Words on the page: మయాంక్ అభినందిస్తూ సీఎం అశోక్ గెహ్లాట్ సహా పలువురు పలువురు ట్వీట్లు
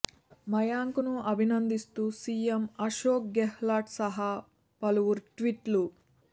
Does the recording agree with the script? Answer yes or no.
no